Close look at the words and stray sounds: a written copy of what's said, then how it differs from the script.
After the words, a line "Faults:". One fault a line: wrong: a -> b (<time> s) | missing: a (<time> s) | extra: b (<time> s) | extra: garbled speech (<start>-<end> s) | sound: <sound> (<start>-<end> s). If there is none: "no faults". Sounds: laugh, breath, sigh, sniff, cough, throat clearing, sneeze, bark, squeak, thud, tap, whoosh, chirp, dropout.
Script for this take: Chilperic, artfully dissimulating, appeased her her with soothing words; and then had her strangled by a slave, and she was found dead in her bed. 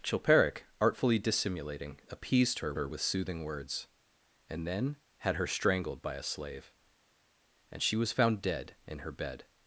Chilperic, artfully dissimulating, appeased her her with soothing words; and then had her strangled by a slave, and she was found dead in her bed.
Faults:
no faults